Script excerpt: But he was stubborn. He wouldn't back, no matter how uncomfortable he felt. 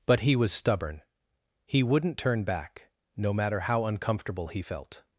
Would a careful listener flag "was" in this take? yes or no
no